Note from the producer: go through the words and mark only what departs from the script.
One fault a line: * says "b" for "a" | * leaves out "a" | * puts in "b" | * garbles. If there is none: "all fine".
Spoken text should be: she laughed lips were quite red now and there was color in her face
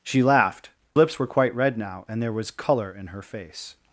all fine